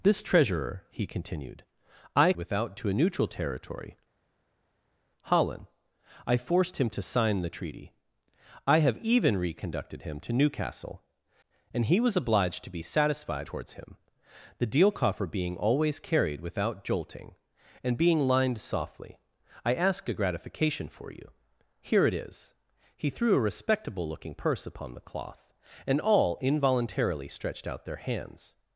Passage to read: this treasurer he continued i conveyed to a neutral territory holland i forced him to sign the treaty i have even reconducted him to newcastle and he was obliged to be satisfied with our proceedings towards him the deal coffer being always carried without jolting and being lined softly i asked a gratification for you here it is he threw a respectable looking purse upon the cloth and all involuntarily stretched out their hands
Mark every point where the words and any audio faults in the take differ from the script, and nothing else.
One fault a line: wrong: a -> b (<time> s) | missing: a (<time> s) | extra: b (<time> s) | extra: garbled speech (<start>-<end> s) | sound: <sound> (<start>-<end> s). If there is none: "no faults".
wrong: conveyed -> without (2.4 s)
missing: with our proceedings (13.5 s)